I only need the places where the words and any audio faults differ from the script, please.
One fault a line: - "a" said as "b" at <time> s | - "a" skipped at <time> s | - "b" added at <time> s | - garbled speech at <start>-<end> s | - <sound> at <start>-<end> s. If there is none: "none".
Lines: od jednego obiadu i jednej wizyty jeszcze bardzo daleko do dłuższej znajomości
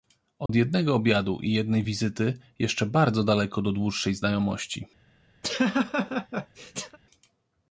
- dropout at 0.5-0.5 s
- laugh at 5.4-7.0 s